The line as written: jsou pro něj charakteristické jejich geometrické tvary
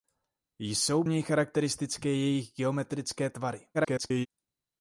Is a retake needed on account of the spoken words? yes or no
yes